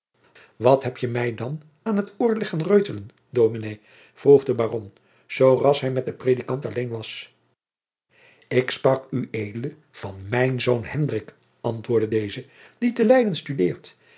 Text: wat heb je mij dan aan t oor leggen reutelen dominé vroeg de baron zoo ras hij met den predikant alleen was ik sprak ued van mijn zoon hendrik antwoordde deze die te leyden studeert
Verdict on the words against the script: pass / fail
pass